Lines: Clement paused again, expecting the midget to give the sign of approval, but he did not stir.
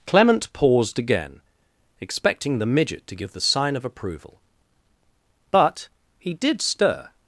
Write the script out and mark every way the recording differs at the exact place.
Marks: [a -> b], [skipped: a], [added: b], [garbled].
Clement paused again, expecting the midget to give the sign of approval, but he did [skipped: not] stir.